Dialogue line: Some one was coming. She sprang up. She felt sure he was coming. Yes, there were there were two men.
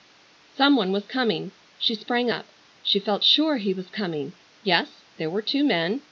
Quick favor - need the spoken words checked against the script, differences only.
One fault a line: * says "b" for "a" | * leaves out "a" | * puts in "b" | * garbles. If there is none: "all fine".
* leaves out "there were"